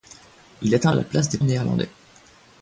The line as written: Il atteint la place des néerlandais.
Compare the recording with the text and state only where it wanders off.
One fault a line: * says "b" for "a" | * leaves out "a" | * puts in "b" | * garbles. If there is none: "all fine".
all fine